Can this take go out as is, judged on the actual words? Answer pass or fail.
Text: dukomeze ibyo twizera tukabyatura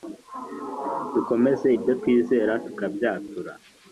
pass